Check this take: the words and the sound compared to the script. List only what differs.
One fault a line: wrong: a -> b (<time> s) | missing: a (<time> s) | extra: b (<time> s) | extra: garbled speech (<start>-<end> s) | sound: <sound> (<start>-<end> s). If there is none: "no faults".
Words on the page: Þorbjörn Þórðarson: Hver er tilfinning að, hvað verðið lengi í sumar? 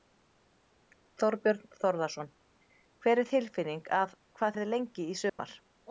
sound: dropout (5.3-5.4 s)